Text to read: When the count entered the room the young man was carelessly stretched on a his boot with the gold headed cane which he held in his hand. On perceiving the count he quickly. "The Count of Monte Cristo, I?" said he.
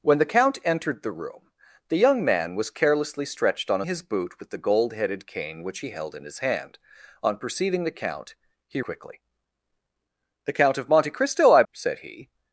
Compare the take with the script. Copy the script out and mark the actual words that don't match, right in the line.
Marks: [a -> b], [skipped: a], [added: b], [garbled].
When the count entered the room the young man was carelessly stretched on a his boot with the gold headed cane which he held in his hand. On perceiving the count he quickly. "The Count of Monte Cristo, I?" said he.